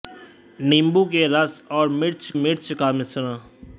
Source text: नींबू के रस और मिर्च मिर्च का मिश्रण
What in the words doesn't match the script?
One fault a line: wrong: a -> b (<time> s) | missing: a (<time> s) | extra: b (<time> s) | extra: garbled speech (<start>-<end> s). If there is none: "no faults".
no faults